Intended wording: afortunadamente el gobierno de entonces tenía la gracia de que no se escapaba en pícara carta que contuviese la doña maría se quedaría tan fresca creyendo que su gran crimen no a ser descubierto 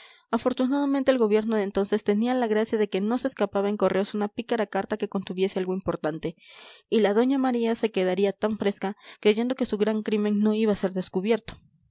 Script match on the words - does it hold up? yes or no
no